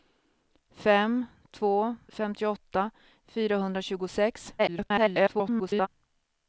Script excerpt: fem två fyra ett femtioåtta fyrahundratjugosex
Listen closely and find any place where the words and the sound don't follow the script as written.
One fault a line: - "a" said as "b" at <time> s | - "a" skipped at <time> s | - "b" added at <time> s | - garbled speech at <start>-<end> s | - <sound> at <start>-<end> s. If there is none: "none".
- "fyra ett" skipped at 1.9 s
- garbled speech at 4.6-5.9 s